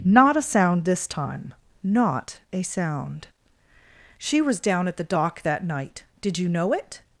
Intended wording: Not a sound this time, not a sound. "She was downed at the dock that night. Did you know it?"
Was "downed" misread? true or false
true